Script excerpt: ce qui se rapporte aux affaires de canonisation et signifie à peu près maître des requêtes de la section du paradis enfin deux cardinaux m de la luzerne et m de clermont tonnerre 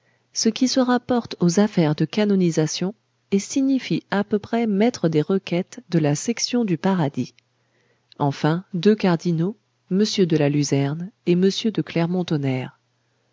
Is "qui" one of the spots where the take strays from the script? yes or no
no